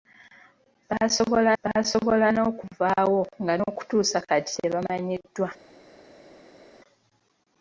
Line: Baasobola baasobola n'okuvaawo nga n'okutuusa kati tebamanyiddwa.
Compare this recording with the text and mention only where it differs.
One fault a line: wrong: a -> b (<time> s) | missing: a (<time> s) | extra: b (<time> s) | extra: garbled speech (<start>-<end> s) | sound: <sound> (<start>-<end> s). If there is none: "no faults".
no faults